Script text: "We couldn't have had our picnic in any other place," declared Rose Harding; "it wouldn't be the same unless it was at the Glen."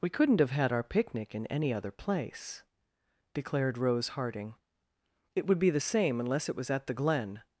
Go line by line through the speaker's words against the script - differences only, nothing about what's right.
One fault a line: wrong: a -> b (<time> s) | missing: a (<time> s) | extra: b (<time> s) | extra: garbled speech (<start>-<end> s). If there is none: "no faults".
wrong: wouldn't -> would (5.5 s)